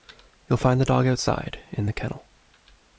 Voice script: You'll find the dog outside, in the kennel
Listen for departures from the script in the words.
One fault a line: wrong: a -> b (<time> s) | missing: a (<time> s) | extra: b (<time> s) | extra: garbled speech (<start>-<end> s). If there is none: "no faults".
no faults